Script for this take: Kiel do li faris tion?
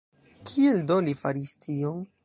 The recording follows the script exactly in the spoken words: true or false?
true